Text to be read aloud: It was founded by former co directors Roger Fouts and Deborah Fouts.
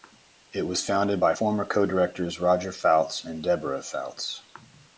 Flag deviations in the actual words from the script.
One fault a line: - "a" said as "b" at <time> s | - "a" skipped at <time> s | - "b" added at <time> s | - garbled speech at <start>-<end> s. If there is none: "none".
none